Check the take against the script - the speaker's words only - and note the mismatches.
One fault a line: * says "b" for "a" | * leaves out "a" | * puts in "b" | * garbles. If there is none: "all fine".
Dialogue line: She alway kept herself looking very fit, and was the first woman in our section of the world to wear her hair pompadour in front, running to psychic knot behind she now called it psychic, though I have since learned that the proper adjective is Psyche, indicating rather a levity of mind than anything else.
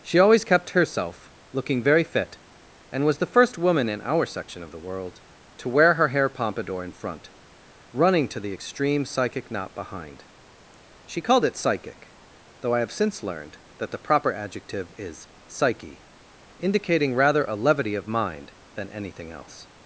* says "always" for "alway"
* puts in "the extreme"
* leaves out "now"